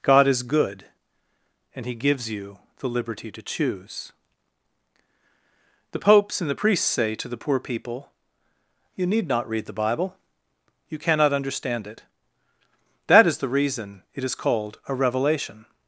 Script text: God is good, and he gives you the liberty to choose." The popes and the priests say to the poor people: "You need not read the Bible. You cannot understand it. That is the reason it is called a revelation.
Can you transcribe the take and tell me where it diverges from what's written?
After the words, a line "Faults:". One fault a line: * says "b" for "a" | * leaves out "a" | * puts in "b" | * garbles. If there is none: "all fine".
God is good, and he gives you the liberty to choose." The popes and the priests say to the poor people: "You need not read the Bible. You cannot understand it. That is the reason it is called a revelation.
Faults:
all fine